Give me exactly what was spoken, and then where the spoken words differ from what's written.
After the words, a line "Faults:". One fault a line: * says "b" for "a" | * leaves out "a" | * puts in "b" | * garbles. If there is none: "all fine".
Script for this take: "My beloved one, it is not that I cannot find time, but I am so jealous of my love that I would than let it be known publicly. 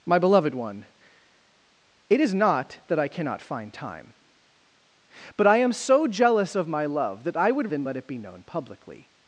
"My beloved one, it is not that I cannot find time, but I am so jealous of my love that I would than let it be known publicly.
Faults:
all fine